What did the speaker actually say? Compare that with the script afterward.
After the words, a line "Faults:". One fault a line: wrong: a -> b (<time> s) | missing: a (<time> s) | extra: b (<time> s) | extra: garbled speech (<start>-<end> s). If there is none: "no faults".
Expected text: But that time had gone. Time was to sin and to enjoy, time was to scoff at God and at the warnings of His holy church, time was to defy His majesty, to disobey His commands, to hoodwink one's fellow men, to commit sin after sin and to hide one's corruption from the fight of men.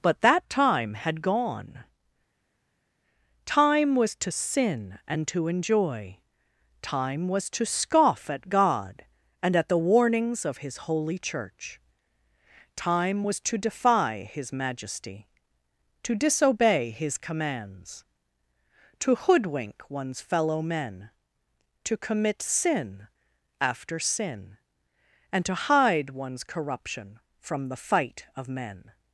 But that time had gone. Time was to sin and to enjoy, time was to scoff at God and at the warnings of His holy church, time was to defy His majesty, to disobey His commands, to hoodwink one's fellow men, to commit sin after sin and to hide one's corruption from the fight of men.
Faults:
no faults